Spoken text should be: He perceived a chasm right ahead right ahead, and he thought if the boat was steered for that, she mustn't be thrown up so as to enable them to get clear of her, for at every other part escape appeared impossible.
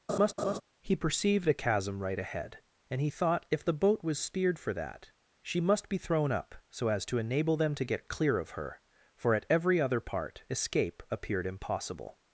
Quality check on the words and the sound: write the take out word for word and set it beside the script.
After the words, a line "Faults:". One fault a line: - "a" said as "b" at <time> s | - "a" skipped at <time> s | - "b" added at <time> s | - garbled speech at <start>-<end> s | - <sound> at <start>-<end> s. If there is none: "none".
He perceived a chasm right ahead, and he thought if the boat was steered for that, she must be thrown up so as to enable them to get clear of her, for at every other part escape appeared impossible.
Faults:
- laugh at 0.1-0.6 s
- "right ahead" skipped at 2.6 s
- "mustn't" said as "must" at 5.6 s